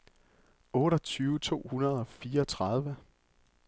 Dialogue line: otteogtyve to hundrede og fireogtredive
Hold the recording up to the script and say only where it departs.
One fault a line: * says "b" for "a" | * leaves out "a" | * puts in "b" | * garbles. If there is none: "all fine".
all fine